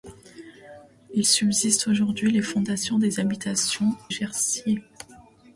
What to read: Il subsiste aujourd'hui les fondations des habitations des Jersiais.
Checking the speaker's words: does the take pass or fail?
fail